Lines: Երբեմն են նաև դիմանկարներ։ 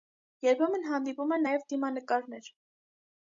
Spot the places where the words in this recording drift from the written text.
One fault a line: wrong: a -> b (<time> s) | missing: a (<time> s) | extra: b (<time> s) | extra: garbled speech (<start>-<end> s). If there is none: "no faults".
extra: հանդիպում (0.9 s)